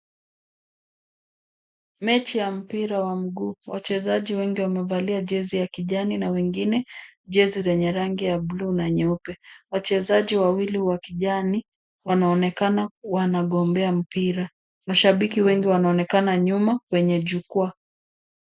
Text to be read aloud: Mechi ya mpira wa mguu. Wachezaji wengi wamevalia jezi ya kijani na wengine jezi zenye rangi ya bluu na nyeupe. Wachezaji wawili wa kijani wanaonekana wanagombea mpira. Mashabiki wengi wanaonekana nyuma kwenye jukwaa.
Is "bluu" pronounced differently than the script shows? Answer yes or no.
no